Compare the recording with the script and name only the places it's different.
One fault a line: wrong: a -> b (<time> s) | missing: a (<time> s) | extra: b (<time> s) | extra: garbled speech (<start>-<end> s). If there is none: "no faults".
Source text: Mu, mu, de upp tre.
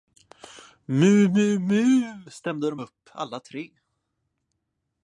extra: mu stämde (1.6 s)
extra: alla (3.1 s)